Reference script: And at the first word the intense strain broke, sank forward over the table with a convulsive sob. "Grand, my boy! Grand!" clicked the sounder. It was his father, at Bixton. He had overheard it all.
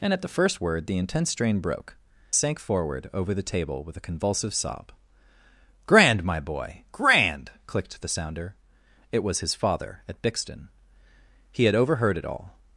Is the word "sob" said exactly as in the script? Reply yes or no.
yes